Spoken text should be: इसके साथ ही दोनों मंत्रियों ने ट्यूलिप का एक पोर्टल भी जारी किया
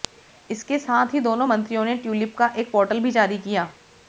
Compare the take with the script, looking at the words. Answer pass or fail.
pass